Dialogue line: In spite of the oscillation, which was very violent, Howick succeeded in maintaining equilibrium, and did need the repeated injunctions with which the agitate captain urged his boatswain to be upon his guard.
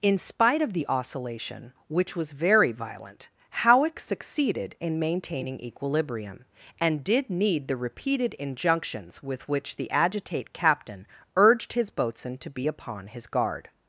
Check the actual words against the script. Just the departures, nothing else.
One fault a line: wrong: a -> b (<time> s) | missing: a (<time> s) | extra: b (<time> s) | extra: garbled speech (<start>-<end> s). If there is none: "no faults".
no faults